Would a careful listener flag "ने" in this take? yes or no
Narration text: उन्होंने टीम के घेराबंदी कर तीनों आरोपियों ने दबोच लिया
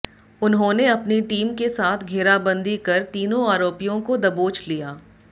yes